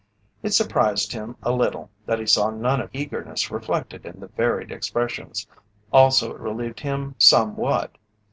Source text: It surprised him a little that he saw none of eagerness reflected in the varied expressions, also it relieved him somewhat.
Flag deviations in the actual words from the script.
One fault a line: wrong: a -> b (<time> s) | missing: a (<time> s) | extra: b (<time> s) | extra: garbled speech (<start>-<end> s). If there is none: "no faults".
no faults